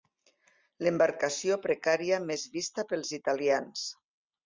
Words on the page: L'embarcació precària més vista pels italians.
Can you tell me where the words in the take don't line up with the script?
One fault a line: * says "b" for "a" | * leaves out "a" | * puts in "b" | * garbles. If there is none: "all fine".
all fine